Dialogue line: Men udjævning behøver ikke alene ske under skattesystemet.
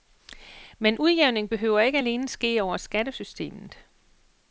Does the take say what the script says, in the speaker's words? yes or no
no